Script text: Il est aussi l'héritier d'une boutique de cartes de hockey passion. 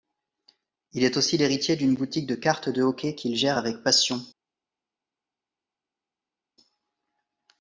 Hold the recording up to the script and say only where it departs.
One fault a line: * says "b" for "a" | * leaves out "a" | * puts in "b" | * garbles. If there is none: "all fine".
* puts in "qu'il gère avec"